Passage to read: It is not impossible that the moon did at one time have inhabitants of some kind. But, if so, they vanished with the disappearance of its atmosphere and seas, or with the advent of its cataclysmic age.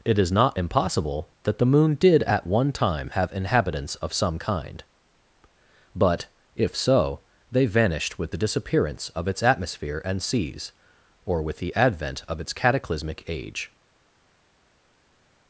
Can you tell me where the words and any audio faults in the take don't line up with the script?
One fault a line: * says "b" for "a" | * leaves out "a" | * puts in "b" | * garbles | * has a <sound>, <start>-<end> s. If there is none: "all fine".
all fine